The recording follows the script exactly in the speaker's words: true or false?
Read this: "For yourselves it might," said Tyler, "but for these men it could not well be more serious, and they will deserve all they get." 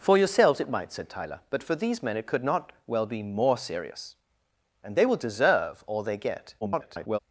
false